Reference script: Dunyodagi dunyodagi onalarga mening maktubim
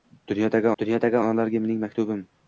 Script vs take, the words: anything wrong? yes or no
no